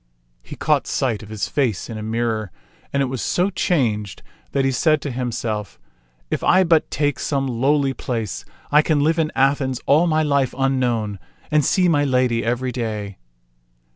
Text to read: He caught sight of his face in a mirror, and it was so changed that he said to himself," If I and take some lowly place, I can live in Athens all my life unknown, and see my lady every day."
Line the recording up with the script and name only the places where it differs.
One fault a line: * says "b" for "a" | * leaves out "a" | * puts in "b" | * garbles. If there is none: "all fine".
* says "but" for "and"